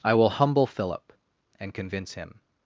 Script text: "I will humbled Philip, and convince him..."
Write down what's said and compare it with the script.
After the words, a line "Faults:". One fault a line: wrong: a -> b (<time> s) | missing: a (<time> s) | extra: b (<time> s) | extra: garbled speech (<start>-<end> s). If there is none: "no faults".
"I will humble Philip, and convince him..."
Faults:
wrong: humbled -> humble (0.3 s)